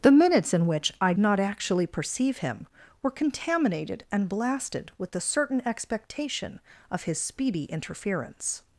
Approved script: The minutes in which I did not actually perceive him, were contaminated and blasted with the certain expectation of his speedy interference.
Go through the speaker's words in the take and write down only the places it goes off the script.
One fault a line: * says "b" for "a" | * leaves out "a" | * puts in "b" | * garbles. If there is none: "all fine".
* leaves out "did"